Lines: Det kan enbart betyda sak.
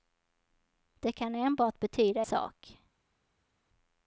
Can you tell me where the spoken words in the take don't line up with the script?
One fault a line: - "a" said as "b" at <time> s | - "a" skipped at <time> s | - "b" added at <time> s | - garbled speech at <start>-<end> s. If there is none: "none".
none